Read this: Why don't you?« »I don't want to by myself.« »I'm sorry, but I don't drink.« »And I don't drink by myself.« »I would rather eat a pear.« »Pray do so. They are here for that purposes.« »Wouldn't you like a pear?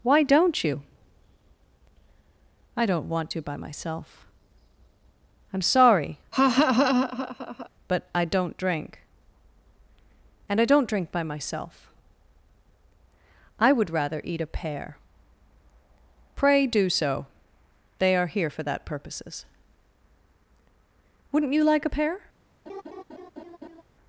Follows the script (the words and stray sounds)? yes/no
no